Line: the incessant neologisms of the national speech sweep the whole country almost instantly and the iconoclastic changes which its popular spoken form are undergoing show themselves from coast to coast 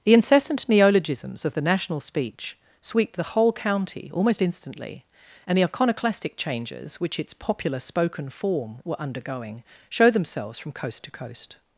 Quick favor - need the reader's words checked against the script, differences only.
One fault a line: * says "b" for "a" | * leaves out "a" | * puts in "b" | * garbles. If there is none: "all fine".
* says "county" for "country"
* says "were" for "are"